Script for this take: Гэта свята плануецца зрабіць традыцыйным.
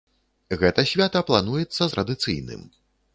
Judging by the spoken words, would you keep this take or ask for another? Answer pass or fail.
fail